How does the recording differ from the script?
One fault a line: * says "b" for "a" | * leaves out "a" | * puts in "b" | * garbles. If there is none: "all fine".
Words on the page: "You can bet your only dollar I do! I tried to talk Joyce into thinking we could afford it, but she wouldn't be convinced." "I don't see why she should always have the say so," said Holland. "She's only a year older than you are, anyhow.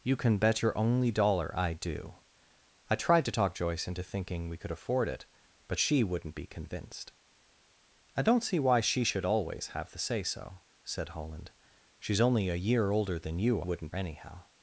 * says "wouldn't" for "are"